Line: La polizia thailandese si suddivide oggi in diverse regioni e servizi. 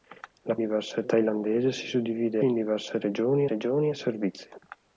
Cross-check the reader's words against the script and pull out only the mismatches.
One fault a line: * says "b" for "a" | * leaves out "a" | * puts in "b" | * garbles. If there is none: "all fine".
* says "diverse" for "polizia"
* leaves out "oggi"
* puts in "regioni"